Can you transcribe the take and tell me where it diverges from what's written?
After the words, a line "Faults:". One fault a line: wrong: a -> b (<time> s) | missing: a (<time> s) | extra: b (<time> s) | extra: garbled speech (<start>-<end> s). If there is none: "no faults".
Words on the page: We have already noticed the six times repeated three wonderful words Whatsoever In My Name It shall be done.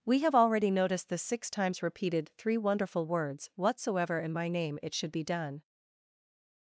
We have already noticed the six times repeated three wonderful words Whatsoever In My Name It should be done.
Faults:
wrong: shall -> should (5.0 s)